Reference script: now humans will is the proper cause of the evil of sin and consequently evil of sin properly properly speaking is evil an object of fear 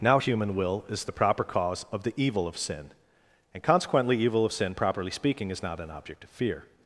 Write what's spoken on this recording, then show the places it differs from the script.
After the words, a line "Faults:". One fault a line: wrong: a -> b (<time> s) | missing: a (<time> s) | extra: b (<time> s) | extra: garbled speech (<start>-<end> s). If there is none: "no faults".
now human will is the proper cause of the evil of sin and consequently evil of sin properly speaking is not an object of fear
Faults:
wrong: humans -> human (0.2 s)
missing: properly (5.1 s)
wrong: evil -> not (5.6 s)